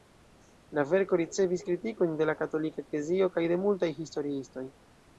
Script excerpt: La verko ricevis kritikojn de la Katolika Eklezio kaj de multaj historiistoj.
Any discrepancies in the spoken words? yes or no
no